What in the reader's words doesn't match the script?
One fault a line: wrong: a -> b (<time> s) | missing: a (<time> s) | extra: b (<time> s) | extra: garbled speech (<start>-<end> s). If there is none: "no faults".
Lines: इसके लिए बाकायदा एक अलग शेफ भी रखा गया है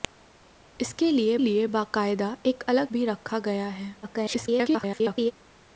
extra: लिए (1.4 s)
missing: शेफ (2.9 s)
extra: garbled speech (4.0-5.3 s)